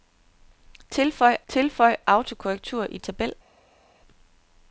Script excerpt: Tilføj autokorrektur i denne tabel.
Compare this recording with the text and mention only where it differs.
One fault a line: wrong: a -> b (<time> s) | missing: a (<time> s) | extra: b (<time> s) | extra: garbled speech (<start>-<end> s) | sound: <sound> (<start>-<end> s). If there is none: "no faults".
extra: tilføj (1.5 s)
missing: denne (3.0 s)